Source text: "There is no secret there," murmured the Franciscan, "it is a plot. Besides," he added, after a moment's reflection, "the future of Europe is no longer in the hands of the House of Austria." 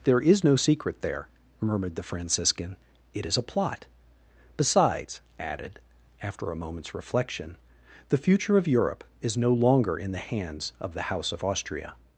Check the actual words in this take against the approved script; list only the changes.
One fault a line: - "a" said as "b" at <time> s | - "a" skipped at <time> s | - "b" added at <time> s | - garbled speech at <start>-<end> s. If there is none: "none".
- "he" skipped at 5.2 s